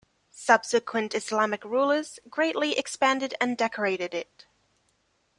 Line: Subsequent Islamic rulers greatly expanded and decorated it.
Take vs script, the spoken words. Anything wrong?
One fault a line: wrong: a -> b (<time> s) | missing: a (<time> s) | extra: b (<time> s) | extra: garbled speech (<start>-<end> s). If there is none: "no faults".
no faults